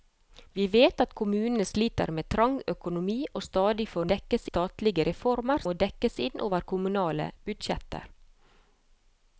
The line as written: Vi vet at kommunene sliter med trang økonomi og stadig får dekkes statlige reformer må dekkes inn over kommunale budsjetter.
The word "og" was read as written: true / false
true